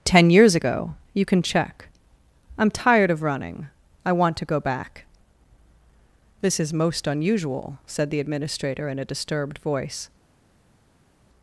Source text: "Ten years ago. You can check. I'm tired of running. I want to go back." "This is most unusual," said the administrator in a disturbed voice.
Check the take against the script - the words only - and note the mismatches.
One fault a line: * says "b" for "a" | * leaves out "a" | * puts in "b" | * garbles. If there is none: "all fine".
all fine